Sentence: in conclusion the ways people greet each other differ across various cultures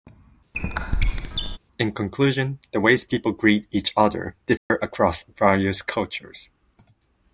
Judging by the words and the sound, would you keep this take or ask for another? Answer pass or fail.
fail